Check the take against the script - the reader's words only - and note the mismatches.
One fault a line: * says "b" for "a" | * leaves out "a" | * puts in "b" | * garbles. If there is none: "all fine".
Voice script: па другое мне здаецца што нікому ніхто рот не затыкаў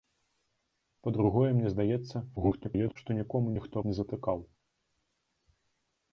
* garbles
* leaves out "рот"